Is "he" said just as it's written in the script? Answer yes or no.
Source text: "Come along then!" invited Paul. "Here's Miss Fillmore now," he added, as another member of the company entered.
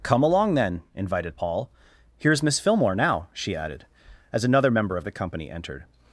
no